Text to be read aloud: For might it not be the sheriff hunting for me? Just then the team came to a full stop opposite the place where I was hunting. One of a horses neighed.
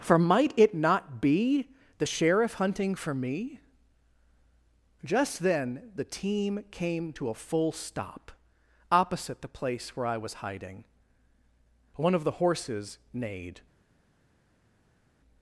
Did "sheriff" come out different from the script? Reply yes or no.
no